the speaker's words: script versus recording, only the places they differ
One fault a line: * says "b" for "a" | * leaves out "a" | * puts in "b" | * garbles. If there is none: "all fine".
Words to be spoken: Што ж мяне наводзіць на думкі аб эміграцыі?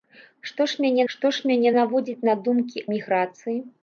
* puts in "што ж мяне"
* leaves out "аб"